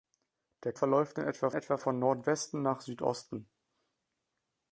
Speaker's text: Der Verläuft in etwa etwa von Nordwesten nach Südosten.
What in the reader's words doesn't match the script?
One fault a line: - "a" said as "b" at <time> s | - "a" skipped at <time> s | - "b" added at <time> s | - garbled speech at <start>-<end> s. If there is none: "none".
none